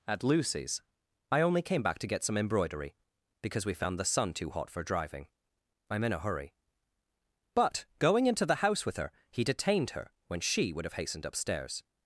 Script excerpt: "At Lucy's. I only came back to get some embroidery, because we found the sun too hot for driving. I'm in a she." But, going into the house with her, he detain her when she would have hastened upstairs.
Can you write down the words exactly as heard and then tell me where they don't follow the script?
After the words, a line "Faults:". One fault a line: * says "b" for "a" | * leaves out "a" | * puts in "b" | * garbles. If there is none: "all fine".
"At Lucy's. I only came back to get some embroidery, because we found the sun too hot for driving. I'm in a hurry." But, going into the house with her, he detained her when she would have hastened upstairs.
Faults:
* says "hurry" for "she"
* says "detained" for "detain"